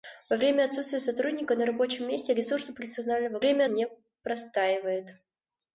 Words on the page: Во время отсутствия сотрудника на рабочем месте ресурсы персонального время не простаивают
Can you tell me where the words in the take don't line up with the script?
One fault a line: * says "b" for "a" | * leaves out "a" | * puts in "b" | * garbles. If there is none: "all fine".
all fine